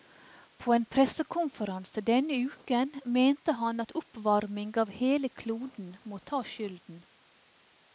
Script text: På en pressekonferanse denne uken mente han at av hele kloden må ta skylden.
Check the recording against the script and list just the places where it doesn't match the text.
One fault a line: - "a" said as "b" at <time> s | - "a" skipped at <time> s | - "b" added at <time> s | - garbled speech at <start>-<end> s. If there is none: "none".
- "oppvarming" added at 4.0 s